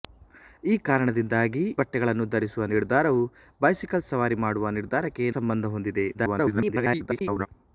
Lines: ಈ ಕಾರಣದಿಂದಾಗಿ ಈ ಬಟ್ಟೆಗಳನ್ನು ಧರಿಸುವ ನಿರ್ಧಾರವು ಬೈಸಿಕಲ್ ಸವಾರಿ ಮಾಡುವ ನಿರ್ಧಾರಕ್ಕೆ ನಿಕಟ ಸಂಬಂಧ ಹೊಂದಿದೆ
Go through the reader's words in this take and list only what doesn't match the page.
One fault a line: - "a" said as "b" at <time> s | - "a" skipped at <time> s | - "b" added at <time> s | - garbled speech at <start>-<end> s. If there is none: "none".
- "ಈ" skipped at 1.6 s
- "ನಿಕಟ" skipped at 5.3 s
- garbled speech at 6.1-7.5 s